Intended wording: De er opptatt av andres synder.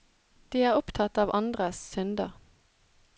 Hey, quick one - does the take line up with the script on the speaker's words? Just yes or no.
yes